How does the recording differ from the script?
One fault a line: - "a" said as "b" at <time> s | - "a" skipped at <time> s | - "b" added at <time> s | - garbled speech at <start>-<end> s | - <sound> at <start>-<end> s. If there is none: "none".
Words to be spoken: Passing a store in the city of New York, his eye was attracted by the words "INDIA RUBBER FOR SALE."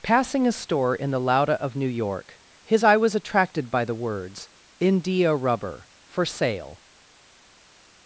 - "city" said as "lauda" at 1.2 s